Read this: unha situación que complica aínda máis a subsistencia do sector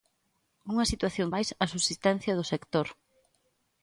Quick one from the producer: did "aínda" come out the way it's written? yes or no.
no